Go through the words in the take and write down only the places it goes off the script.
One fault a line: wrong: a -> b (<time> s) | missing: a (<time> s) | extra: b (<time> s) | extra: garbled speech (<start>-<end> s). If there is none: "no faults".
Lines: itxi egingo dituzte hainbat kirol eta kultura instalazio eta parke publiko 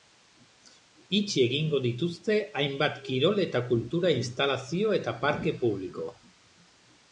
no faults